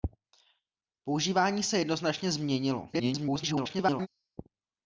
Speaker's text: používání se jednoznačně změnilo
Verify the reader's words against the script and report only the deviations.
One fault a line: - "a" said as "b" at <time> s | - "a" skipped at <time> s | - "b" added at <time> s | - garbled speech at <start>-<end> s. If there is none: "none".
- garbled speech at 2.9-4.1 s